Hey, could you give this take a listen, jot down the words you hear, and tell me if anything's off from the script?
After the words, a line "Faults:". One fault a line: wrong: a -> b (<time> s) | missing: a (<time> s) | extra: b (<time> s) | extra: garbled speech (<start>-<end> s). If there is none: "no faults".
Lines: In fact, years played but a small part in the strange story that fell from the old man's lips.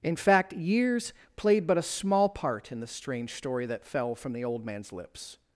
In fact, years played but a small part in the strange story that fell from the old man's lips.
Faults:
no faults